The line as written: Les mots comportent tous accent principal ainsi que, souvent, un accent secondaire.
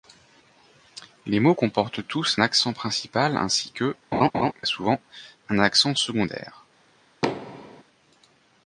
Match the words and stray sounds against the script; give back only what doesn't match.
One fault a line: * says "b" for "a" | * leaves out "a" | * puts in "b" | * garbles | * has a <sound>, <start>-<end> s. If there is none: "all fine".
* has a laugh, 4.1-4.5 s
* has a thud, 7.2-7.8 s